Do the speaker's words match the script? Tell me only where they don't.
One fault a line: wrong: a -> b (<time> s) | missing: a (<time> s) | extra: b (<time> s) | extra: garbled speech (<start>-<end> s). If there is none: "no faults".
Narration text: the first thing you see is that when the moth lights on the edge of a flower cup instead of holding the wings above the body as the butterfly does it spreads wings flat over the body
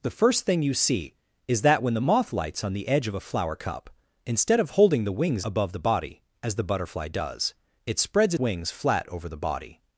no faults